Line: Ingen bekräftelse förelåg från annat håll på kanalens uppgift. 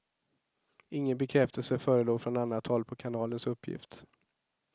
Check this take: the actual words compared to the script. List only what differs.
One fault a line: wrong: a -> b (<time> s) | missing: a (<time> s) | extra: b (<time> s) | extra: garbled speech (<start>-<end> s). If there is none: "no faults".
no faults